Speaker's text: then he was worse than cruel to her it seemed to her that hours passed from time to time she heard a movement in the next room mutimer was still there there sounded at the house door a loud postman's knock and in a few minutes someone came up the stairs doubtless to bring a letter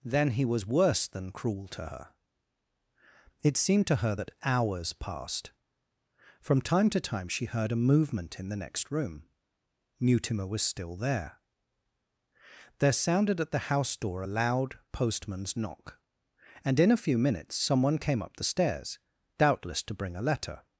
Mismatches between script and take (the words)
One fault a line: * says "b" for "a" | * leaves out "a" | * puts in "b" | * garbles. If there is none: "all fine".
all fine